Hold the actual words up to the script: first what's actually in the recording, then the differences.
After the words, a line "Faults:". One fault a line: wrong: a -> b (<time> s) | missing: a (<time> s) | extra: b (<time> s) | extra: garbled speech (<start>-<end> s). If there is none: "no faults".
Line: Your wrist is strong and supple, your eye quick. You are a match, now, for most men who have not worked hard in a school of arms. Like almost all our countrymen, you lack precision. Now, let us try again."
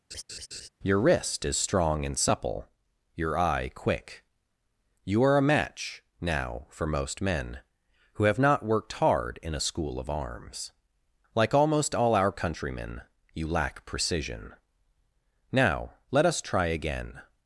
Your wrist is strong and supple, your eye quick. You are a match, now, for most men who have not worked hard in a school of arms. Like almost all our countrymen, you lack precision. Now, let us try again."
Faults:
no faults